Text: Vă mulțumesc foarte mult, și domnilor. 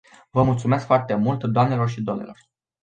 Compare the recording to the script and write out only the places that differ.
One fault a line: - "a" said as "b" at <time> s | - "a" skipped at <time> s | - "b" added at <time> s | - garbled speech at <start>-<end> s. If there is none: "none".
- "doamnelor" added at 1.4 s